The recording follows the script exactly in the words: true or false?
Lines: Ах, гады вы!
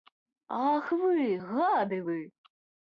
false